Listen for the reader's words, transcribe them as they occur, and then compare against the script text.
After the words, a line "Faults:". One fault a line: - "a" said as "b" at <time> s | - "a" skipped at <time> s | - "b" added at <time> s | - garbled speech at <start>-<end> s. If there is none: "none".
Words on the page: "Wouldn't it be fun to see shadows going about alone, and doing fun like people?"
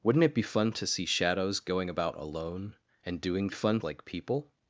"Wouldn't it be fun to see shadows going about alone, and doing fun like people?"
Faults:
none